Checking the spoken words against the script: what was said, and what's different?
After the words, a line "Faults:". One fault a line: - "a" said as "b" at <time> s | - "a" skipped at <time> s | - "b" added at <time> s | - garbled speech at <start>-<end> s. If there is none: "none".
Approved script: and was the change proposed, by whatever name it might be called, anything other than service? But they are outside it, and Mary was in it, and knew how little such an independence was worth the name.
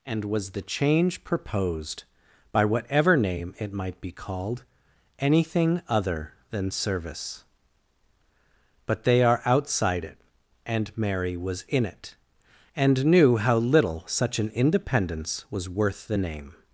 and was the change proposed, by whatever name it might be called, anything other than service? But they are outside it, and Mary was in it, and knew how little such an independence was worth the name.
Faults:
none